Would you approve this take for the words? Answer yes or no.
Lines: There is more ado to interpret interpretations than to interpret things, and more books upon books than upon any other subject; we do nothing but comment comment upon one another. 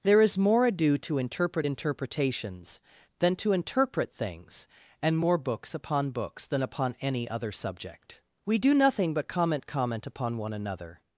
yes